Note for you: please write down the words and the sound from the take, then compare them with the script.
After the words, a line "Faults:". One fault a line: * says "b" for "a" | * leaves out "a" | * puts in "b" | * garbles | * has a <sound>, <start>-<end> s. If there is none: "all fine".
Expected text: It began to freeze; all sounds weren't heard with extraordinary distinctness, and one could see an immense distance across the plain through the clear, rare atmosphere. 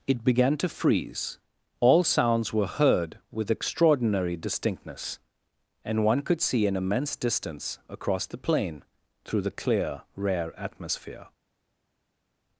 It began to freeze; all sounds were heard with extraordinary distinctness, and one could see an immense distance across the plain through the clear, rare atmosphere.
Faults:
* says "were" for "weren't"